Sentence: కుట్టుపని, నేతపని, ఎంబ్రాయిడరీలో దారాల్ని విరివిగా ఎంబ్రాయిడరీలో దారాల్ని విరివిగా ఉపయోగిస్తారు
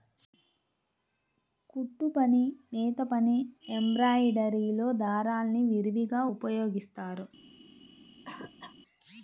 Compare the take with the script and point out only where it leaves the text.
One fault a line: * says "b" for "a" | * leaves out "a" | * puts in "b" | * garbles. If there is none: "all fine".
* leaves out "ఎంబ్రాయిడరీలో దారాల్ని విరివిగా"